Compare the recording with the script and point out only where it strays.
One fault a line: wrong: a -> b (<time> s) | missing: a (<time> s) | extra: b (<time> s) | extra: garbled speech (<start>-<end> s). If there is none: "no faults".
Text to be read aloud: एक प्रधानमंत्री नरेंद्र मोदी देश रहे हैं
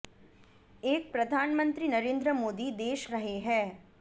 no faults